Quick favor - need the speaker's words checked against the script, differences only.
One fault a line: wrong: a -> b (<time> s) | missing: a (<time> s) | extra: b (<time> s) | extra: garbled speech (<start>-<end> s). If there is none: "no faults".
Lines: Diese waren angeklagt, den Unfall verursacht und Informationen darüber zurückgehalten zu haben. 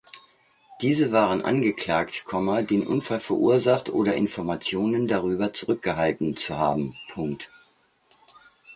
wrong: und -> oder (3.9 s)